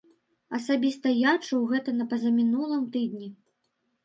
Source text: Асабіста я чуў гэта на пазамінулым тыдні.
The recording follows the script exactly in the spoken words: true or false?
true